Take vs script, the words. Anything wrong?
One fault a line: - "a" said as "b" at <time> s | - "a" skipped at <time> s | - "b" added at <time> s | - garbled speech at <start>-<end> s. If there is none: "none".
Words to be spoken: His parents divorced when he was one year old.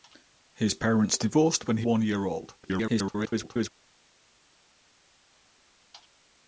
- "was" skipped at 1.9 s
- garbled speech at 2.6-3.7 s